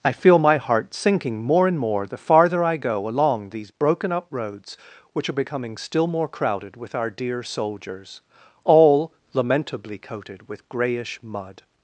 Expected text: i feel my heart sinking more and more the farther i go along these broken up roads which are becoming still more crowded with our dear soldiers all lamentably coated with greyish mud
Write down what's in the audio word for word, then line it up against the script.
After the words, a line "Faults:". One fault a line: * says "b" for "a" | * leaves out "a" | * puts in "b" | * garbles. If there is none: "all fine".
i feel my heart sinking more and more the farther i go along these broken up roads which are becoming still more crowded with our dear soldiers all lamentably coated with greyish mud
Faults:
all fine